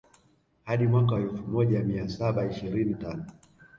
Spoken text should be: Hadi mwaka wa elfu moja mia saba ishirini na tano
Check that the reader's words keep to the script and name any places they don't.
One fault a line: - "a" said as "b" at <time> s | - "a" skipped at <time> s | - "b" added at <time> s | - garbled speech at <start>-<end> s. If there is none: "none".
- "na" skipped at 2.9 s